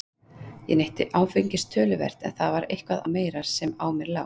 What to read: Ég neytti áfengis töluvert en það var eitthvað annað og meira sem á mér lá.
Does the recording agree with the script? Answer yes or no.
no